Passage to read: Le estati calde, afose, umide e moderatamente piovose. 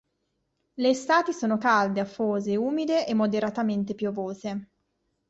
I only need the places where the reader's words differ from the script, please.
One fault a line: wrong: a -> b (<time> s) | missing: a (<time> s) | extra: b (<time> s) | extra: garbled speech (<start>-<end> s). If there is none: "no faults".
extra: sono (1.3 s)